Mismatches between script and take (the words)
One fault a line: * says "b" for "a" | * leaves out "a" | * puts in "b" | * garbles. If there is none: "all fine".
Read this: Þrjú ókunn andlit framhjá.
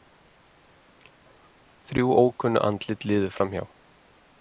* puts in "liðu"